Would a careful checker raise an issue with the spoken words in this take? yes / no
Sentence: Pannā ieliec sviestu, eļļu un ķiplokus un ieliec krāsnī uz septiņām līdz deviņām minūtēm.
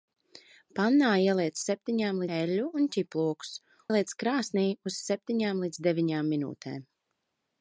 yes